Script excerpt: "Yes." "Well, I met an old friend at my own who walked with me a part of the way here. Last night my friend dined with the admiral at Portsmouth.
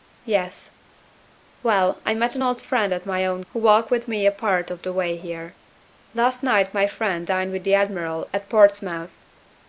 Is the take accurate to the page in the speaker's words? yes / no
yes